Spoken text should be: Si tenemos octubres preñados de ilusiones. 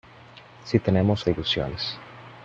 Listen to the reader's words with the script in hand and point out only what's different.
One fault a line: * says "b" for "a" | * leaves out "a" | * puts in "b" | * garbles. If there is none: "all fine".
* leaves out "octubres preñados"